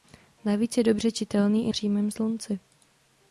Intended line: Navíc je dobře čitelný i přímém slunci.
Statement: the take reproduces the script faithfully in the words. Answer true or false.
true